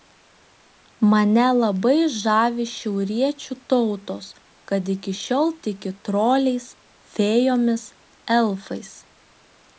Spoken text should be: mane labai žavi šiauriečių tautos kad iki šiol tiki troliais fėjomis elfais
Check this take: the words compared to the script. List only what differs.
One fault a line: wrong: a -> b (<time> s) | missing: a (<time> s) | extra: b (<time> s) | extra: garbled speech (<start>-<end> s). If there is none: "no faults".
no faults